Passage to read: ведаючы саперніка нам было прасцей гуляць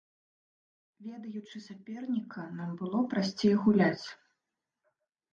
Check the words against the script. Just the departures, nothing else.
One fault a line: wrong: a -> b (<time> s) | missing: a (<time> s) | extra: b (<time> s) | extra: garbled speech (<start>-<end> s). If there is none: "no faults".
no faults